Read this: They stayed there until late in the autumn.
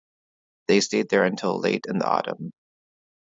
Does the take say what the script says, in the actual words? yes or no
yes